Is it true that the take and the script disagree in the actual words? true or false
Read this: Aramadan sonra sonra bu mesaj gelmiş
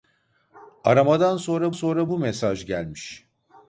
false